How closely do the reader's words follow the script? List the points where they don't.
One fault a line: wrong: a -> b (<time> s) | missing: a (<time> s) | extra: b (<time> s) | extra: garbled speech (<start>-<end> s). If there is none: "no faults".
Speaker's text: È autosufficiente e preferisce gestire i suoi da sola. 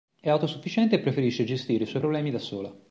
extra: problemi (2.0 s)